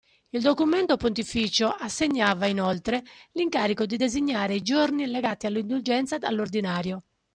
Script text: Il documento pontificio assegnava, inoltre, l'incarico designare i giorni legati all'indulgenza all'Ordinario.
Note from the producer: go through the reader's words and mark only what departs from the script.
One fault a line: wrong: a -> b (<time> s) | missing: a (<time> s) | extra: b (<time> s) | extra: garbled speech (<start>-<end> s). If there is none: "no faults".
extra: di (3.9 s)